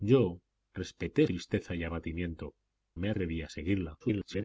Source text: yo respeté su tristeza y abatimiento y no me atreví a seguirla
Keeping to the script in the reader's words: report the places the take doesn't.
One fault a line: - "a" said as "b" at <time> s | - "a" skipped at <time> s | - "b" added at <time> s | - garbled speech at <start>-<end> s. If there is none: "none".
- "su" skipped at 1.3 s
- "y no" skipped at 2.5 s
- garbled speech at 4.0-4.4 s